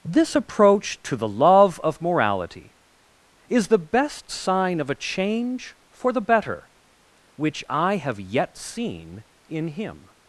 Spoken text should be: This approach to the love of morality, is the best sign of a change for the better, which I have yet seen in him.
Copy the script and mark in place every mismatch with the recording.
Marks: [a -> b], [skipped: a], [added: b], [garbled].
This approach to the love of morality, is the best sign of a change for the better, which I have yet seen in him.